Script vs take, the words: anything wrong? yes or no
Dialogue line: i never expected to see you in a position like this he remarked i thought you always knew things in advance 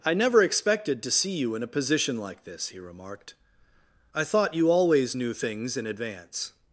no